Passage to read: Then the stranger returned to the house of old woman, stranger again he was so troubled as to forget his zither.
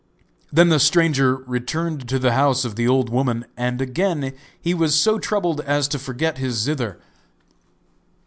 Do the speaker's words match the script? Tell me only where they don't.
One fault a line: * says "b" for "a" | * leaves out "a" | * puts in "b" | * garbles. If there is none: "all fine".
* puts in "the"
* says "and" for "stranger"